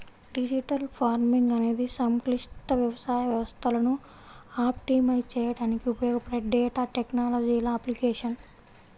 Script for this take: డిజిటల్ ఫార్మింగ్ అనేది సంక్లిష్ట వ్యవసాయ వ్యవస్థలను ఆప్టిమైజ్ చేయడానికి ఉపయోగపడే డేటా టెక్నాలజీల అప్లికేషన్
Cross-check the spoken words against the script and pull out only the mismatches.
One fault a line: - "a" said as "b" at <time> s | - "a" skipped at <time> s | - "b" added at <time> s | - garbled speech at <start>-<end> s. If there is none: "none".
none